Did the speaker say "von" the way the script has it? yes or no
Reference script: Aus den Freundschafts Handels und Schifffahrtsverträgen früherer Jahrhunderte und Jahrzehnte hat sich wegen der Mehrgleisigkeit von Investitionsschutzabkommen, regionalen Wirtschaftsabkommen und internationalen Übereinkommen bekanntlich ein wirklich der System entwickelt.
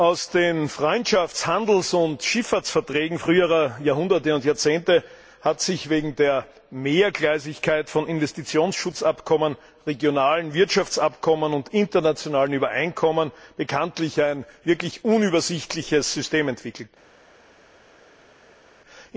yes